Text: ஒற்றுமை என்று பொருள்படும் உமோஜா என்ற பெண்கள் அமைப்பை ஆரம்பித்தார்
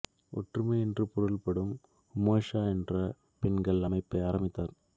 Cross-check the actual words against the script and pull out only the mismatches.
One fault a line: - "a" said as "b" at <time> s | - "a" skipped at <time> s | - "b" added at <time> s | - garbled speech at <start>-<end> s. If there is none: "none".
none